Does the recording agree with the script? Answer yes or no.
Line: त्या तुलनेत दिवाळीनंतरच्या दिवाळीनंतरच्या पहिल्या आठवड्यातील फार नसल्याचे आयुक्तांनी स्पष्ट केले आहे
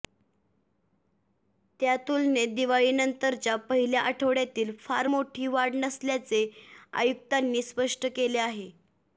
no